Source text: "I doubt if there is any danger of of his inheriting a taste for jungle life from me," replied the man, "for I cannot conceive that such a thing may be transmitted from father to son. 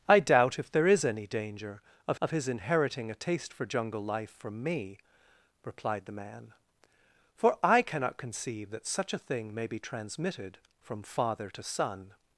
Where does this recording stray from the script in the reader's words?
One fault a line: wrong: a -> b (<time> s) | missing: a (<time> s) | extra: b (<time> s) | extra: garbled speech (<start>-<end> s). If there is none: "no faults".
no faults